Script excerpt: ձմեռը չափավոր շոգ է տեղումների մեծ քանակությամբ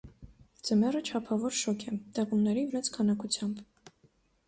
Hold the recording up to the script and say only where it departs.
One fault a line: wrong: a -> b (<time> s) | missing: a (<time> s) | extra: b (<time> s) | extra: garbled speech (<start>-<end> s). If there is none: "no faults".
no faults